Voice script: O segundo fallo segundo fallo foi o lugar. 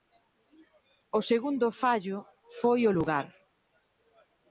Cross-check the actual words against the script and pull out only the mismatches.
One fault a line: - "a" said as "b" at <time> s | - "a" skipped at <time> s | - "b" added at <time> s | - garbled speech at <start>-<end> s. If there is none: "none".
- "segundo fallo" skipped at 2.2 s